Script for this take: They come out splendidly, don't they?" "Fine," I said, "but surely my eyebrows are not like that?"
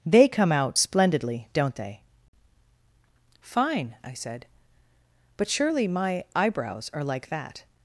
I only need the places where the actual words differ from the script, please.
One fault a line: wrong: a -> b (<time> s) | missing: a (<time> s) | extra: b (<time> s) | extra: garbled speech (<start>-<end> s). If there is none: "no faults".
missing: not (7.0 s)